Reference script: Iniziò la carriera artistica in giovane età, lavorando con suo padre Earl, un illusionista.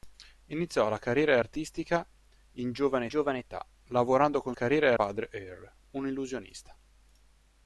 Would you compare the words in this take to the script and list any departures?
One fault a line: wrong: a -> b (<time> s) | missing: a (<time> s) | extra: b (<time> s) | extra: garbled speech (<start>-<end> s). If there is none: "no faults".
extra: giovane (3.1 s)
wrong: suo -> carriera (4.5 s)